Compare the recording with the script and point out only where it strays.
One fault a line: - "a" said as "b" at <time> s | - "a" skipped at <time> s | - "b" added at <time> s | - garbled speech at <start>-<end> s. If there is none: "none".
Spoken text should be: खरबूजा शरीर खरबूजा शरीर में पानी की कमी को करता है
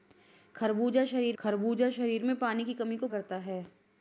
none